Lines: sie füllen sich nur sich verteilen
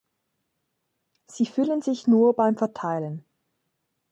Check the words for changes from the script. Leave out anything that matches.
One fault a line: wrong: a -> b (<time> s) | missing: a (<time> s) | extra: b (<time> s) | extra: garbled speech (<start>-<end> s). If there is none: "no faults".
wrong: sich -> beim (2.3 s)